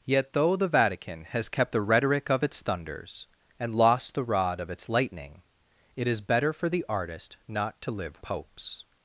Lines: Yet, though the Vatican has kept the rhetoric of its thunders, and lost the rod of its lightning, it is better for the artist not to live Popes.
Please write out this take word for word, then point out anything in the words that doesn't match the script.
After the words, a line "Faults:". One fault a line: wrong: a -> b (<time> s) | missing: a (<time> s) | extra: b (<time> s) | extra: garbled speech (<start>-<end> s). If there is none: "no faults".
Yet, though the Vatican has kept the rhetoric of its thunders, and lost the rod of its lightning, it is better for the artist not to live Popes.
Faults:
no faults